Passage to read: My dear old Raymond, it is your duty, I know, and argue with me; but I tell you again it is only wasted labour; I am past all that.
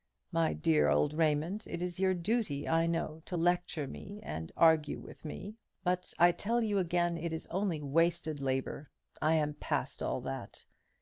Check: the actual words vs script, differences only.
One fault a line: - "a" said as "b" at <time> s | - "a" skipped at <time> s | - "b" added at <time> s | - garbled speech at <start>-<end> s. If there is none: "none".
- "to lecture me" added at 3.3 s